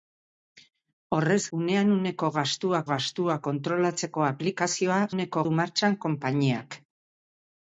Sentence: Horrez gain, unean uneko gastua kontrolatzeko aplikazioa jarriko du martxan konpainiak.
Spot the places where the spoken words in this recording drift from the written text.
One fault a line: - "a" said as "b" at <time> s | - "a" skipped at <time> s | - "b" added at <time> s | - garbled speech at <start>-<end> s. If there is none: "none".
- "gain" skipped at 1.4 s
- "gastua" added at 2.9 s
- "jarriko" said as "uneko" at 5.1 s